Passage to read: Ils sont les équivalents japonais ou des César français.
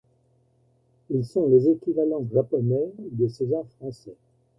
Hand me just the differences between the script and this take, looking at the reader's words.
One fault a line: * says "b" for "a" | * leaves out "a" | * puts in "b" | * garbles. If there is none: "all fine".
all fine